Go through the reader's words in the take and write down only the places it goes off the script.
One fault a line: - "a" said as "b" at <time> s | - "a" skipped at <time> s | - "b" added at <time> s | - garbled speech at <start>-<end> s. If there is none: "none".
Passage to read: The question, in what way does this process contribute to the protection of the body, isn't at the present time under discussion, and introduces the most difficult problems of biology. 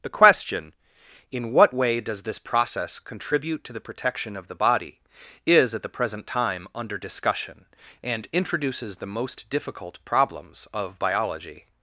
- "isn't" said as "is" at 5.4 s